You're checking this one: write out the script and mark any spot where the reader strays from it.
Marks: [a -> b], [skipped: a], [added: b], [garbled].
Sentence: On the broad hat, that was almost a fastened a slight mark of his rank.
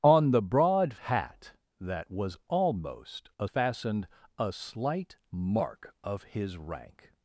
On the broad hat, that was almost a fastened a slight mark of his rank.